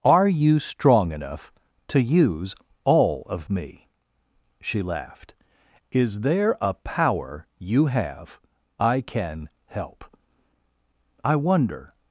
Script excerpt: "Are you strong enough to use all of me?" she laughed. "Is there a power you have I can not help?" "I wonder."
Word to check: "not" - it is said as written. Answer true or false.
false